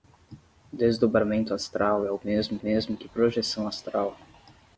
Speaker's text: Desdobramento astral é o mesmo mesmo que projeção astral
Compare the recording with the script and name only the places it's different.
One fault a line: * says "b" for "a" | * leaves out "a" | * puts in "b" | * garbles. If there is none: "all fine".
all fine